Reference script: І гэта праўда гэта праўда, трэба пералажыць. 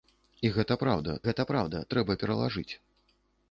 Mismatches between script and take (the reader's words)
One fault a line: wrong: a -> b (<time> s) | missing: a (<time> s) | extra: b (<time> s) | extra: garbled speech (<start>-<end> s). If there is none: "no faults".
no faults